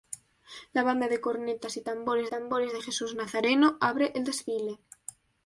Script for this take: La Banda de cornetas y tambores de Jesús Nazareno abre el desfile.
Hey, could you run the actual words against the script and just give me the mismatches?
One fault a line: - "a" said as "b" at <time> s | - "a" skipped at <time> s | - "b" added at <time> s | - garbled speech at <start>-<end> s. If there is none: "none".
- "tambores" added at 2.3 s